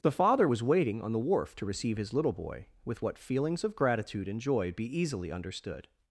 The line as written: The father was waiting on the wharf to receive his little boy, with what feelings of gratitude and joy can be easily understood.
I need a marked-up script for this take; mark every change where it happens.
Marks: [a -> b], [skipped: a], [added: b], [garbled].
The father was waiting on the wharf to receive his little boy, with what feelings of gratitude and joy [skipped: can] be easily understood.